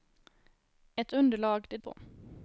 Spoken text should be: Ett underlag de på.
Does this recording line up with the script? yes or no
yes